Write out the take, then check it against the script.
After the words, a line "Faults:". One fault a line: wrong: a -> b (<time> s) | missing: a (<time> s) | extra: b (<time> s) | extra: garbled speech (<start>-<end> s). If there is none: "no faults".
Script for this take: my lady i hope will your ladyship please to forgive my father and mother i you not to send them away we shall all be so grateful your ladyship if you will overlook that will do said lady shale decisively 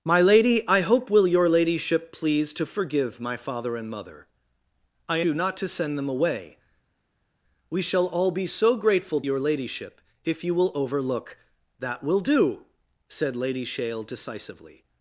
my lady i hope will your ladyship please to forgive my father and mother i you not to send them away we shall all be so grateful your ladyship if you will overlook that will do said lady shale decisively
Faults:
no faults